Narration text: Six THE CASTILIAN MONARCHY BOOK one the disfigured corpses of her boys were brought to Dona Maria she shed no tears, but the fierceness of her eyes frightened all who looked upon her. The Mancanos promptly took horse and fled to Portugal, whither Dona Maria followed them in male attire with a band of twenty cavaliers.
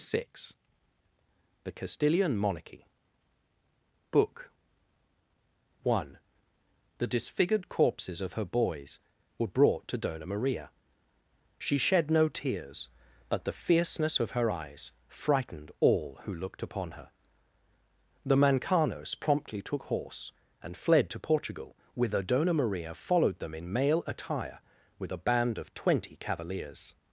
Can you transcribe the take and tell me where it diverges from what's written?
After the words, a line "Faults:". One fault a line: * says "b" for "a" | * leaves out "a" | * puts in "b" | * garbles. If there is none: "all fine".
Six THE CASTILIAN MONARCHY BOOK one the disfigured corpses of her boys were brought to Dona Maria she shed no tears, but the fierceness of her eyes frightened all who looked upon her. The Mancanos promptly took horse and fled to Portugal, whither Dona Maria followed them in male attire with a band of twenty cavaliers.
Faults:
all fine